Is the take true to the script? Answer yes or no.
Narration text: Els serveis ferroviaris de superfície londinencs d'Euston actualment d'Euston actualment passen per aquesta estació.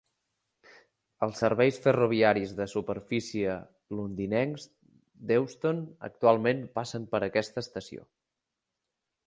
no